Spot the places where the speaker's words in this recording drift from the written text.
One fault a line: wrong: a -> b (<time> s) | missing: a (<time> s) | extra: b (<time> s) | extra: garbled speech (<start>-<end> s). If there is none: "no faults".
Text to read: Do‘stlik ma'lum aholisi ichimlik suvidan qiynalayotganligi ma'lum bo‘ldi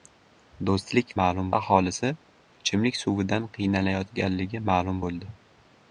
no faults